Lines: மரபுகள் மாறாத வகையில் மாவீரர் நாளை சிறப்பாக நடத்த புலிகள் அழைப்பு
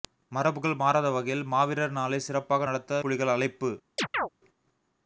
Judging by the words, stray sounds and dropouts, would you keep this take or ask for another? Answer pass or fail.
fail